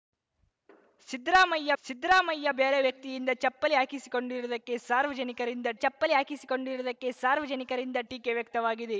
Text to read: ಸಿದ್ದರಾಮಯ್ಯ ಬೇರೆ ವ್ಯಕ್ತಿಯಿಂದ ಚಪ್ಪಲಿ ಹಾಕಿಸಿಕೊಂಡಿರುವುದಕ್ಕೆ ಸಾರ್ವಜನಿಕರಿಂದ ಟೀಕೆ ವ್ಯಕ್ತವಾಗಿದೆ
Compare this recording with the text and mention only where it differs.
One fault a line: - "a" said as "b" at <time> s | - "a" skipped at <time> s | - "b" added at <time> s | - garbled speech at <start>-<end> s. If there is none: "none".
- "ಸಿದ್ದರಾಮಯ್ಯ" added at 1.8 s
- "ಚಪ್ಪಲಿ ಹಾಕಿಸಿಕೊಂಡಿರುವುದಕ್ಕೆ ಸಾರ್ವಜನಿಕರಿಂದ" added at 5.8 s